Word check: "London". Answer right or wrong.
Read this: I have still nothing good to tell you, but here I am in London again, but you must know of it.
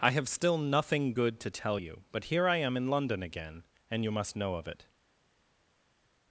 right